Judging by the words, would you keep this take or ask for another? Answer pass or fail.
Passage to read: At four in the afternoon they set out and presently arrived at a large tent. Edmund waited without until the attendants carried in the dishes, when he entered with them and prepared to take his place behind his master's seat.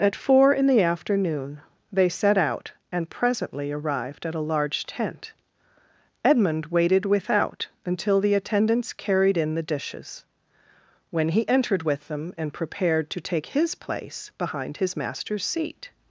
pass